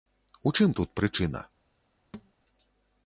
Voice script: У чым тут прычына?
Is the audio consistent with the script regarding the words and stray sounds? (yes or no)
no